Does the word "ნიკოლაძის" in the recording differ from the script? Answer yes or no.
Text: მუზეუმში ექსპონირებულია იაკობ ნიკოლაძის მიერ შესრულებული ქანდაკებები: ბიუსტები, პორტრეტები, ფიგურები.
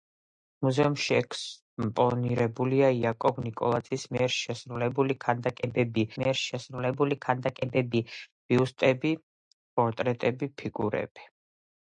no